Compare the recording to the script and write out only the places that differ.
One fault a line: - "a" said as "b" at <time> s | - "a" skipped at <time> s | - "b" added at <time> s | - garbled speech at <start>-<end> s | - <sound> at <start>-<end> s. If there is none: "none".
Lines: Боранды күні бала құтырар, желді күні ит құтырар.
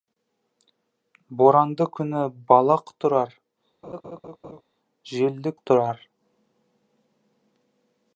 - laugh at 3.8-4.6 s
- "күні ит" skipped at 5.6 s